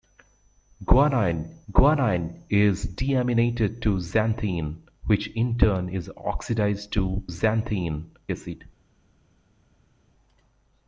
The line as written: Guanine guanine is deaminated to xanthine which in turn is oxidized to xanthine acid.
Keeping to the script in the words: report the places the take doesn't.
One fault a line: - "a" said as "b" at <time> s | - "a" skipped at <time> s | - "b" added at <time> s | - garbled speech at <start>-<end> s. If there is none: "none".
none